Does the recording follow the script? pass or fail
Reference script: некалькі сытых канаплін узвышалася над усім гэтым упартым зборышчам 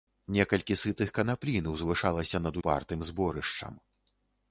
fail